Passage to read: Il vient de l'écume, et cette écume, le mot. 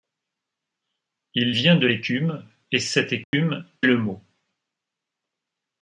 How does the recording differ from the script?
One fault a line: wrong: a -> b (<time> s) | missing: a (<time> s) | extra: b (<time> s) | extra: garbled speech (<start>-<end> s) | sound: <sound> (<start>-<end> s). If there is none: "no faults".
sound: dropout (3.2-3.3 s)